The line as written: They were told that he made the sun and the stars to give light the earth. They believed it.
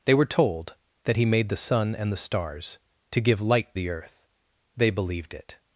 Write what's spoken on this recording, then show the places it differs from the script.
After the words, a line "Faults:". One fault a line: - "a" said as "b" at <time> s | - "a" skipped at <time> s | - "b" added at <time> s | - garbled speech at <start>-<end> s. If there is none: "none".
They were told that he made the sun and the stars to give light the earth. They believed it.
Faults:
none